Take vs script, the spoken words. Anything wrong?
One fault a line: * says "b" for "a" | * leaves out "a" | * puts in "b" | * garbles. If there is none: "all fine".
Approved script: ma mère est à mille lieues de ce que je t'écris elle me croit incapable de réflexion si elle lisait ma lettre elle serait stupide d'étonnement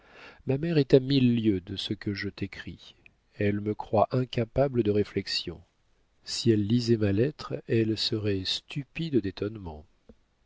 all fine